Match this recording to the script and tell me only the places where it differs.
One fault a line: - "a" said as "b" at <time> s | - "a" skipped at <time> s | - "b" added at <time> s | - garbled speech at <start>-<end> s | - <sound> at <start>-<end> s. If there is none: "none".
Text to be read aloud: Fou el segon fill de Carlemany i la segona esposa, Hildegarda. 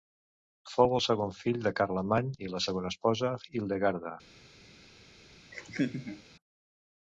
- laugh at 5.5-6.2 s